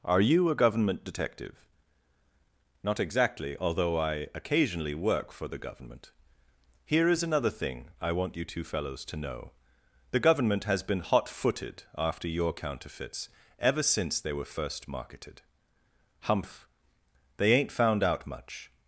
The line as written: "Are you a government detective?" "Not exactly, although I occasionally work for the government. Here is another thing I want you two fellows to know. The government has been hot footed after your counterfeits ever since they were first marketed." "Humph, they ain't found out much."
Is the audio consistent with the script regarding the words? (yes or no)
yes